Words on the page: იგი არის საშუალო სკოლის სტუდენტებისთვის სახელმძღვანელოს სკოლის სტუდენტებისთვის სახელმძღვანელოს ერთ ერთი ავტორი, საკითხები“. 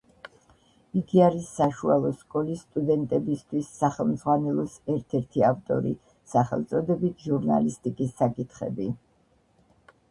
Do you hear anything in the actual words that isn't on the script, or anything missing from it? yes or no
yes